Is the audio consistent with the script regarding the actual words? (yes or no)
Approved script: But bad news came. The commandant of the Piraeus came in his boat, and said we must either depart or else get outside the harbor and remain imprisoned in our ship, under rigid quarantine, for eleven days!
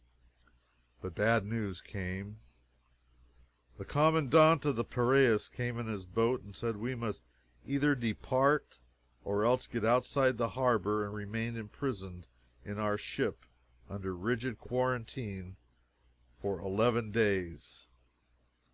yes